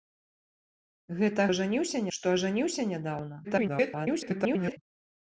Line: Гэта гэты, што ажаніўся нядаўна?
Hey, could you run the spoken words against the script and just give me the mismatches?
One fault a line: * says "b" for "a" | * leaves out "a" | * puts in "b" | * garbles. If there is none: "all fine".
* says "ажаніўся" for "гэты"
* garbles